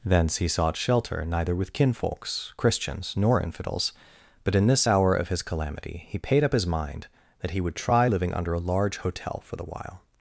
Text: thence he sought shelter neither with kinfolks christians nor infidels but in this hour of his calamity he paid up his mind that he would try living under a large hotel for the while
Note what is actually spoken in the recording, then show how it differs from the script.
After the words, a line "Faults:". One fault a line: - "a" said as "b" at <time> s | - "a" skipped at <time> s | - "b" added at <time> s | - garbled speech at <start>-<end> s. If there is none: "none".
thence he sought shelter neither with kinfolks christians nor infidels but in this hour of his calamity he paid up his mind that he would try living under a large hotel for the while
Faults:
none